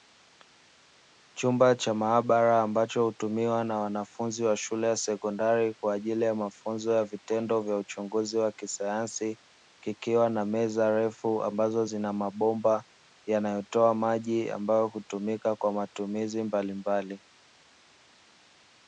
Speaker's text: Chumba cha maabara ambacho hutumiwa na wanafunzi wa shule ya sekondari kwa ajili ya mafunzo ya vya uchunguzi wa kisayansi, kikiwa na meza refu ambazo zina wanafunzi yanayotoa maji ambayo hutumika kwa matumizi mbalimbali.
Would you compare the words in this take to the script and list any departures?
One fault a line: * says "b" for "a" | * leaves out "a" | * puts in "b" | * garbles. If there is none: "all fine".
* puts in "vitendo"
* says "mabomba" for "wanafunzi"